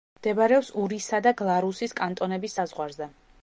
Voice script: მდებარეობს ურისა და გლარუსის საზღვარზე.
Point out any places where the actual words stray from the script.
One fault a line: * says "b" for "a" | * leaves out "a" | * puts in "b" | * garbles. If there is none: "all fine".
* puts in "კანტონების"